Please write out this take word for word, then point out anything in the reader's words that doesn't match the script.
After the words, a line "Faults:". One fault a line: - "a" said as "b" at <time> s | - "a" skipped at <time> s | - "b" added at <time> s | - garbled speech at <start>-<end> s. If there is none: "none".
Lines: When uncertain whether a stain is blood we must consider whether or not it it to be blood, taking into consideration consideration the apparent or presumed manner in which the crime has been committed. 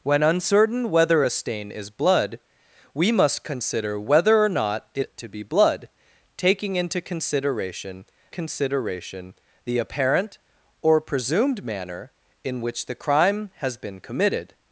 When uncertain whether a stain is blood we must consider whether or not it it to be blood, taking into consideration consideration the apparent or presumed manner in which the crime has been committed.
Faults:
none